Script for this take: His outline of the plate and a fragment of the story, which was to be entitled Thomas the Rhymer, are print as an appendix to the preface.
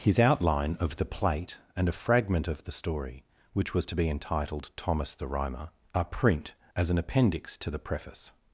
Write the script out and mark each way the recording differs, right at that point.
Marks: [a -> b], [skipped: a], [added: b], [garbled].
His outline of the plate and a fragment of the story, which was to be entitled Thomas the Rhymer, are print as an appendix to the preface.